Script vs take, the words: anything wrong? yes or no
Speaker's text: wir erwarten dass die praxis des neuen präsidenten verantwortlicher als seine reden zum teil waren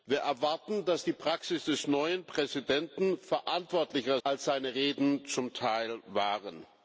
no